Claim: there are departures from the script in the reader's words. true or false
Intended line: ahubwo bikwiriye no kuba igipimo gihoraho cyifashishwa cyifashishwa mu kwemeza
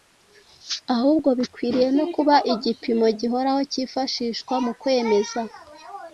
true